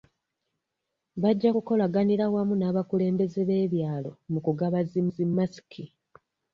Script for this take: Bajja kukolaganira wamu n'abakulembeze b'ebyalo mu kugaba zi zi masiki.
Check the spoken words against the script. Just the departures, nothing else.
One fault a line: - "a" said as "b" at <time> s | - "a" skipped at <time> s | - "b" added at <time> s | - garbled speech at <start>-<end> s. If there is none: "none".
none